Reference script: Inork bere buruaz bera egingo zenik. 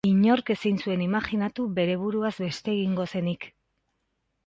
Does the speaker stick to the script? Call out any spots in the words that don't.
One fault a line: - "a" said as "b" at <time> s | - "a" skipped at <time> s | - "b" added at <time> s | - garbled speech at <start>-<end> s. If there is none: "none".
- "ezin zuen imajinatu" added at 0.5 s
- "bera" said as "beste" at 2.5 s